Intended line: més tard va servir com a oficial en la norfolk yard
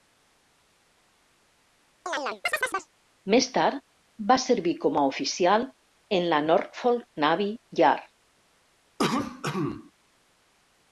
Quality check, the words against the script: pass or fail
fail